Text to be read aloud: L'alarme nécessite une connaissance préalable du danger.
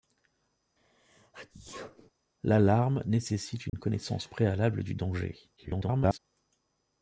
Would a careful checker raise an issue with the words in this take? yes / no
yes